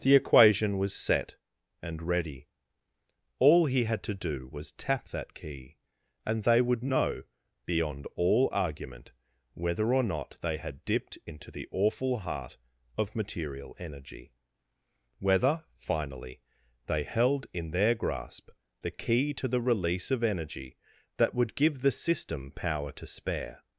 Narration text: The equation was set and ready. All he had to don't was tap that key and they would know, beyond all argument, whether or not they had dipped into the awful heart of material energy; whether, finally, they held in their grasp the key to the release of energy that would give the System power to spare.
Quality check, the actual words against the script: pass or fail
fail